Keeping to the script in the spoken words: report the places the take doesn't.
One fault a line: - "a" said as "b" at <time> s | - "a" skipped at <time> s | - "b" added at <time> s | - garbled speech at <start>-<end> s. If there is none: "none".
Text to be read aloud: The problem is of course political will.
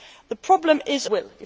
- "of course political" skipped at 1.1 s